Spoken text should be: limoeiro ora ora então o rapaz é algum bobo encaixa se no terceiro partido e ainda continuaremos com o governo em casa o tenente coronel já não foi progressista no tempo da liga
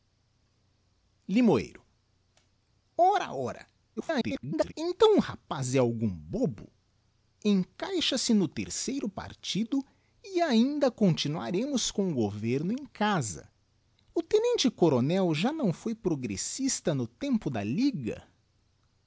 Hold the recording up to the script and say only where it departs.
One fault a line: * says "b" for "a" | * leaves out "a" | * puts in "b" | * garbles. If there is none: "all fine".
* garbles